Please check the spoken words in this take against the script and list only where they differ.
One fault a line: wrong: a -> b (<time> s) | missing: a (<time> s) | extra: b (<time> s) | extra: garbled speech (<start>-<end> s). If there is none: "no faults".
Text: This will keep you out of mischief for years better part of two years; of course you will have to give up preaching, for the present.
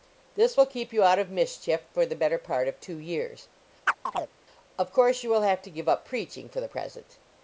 wrong: years -> the (2.1 s)